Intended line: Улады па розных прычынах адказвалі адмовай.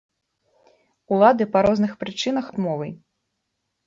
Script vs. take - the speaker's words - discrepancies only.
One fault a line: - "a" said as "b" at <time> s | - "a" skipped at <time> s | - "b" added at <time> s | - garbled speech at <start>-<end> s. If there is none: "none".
- "адказвалі" skipped at 2.5 s